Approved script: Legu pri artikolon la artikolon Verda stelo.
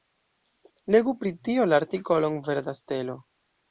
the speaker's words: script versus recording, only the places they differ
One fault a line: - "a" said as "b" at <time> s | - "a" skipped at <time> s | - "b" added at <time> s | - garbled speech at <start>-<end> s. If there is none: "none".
- "artikolon" said as "tio" at 1.5 s